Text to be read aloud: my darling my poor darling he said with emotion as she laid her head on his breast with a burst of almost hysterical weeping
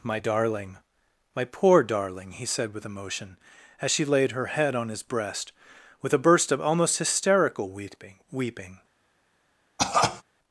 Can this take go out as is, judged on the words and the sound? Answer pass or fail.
fail